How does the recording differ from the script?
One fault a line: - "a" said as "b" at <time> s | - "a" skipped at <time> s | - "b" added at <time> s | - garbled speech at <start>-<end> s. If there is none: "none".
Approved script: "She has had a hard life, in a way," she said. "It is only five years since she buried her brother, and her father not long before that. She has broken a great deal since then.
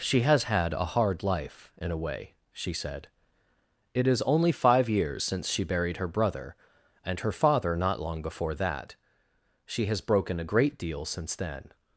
none